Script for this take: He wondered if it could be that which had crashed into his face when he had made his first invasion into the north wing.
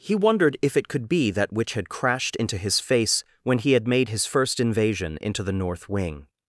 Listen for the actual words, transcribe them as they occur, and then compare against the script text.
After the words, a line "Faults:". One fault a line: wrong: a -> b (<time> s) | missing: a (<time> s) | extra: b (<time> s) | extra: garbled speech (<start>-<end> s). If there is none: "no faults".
He wondered if it could be that which had crashed into his face when he had made his first invasion into the north wing.
Faults:
no faults